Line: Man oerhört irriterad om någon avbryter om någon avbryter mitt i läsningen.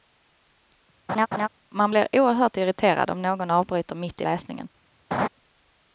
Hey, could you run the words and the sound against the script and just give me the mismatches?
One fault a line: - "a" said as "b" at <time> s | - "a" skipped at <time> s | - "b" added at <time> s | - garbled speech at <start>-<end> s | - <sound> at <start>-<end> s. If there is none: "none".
- laugh at 1.1-1.5 s
- "blir" added at 1.9 s
- "om någon avbryter" skipped at 4.0 s
- laugh at 5.1-5.3 s